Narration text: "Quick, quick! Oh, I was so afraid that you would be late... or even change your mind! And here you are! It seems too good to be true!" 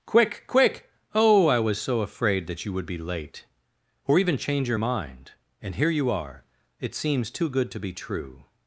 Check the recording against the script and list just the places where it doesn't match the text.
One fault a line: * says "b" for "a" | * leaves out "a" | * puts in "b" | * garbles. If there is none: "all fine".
all fine